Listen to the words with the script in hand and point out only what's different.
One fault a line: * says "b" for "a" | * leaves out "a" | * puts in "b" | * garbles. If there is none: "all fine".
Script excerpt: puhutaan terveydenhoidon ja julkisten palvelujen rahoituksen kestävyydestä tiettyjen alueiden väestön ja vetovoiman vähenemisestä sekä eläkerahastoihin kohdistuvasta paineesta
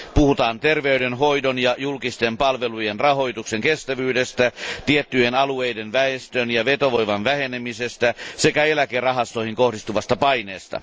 all fine